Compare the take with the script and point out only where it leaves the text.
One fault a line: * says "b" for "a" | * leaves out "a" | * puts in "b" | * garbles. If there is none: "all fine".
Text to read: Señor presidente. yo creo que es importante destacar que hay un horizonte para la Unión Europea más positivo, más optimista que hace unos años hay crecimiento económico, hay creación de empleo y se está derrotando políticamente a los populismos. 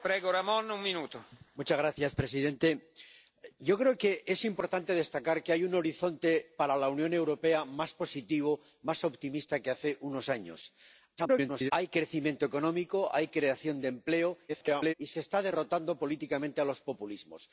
* garbles
* garbles